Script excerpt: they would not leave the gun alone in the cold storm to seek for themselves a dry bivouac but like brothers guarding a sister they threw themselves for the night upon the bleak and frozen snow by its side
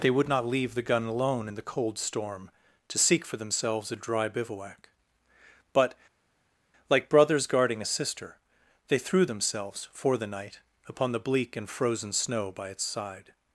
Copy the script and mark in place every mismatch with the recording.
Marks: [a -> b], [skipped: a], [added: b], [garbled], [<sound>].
they would not leave the gun alone in the cold storm to seek for themselves a dry bivouac but like brothers guarding a sister they threw themselves for the night upon the bleak and frozen snow by its side